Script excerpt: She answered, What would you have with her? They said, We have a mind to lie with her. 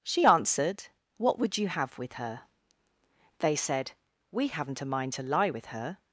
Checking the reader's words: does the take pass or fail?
fail